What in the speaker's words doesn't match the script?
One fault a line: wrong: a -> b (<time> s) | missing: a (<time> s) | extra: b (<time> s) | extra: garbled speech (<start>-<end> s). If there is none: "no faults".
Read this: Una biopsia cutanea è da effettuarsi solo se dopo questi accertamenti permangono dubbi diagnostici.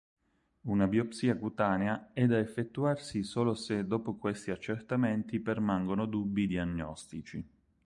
no faults